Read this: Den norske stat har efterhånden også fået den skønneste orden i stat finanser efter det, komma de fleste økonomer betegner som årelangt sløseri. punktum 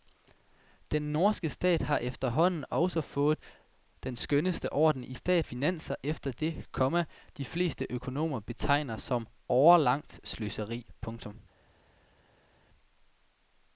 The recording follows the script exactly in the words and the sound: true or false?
true